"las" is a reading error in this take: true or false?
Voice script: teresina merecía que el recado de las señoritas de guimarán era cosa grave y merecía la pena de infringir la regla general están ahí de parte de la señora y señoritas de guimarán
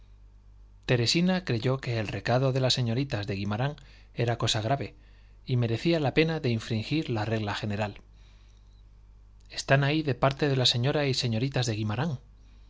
false